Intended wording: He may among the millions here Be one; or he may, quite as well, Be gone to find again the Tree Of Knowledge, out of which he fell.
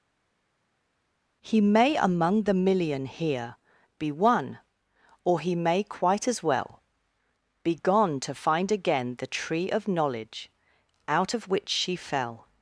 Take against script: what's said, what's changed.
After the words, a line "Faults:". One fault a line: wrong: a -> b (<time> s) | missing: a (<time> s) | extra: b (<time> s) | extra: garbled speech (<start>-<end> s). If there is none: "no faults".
He may among the million here Be one; or he may, quite as well, Be gone to find again the Tree Of Knowledge, out of which she fell.
Faults:
wrong: millions -> million (2.5 s)
wrong: he -> she (11.7 s)